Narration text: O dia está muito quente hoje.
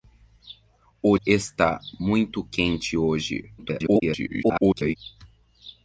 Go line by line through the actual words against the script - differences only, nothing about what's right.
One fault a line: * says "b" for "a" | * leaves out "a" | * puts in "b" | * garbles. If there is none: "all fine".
* leaves out "dia"
* garbles